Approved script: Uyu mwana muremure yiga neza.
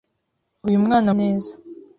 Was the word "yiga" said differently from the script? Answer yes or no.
yes